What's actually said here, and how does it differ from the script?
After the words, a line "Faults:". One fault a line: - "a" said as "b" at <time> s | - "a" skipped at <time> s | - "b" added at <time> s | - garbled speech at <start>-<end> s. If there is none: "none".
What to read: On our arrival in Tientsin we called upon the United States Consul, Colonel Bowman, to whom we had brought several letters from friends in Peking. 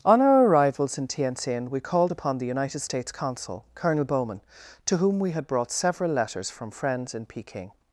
On our arrivals in Tientsin we called upon the United States Consul, Colonel Bowman, to whom we had brought several letters from friends in Peking.
Faults:
- "arrival" said as "arrivals" at 0.5 s